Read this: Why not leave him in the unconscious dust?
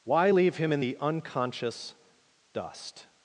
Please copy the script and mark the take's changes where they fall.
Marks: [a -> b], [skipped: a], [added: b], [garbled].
Why [skipped: not] leave him in the unconscious dust?